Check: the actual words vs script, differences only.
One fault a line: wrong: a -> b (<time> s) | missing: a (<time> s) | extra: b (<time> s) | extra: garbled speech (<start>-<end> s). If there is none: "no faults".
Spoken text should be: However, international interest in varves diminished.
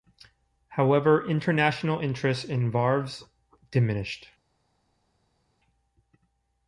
no faults